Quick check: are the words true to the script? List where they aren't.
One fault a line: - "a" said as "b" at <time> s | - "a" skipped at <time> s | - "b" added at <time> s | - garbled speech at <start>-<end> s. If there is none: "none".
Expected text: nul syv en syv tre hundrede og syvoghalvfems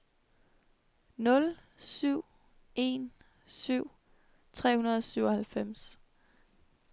none